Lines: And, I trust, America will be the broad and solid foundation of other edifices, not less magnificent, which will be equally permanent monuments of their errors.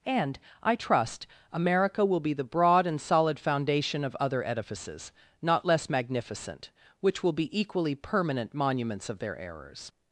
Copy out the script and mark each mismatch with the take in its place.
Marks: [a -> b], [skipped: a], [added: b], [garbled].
And, I trust, America will be the broad and solid foundation of other edifices, not less magnificent, which will be equally permanent monuments of their errors.